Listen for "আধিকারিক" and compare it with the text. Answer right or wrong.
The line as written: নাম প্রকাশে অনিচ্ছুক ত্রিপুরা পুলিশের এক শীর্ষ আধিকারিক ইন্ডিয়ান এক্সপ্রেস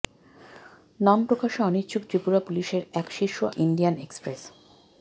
wrong